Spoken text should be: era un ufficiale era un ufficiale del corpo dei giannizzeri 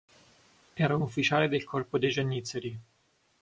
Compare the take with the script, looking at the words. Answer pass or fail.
fail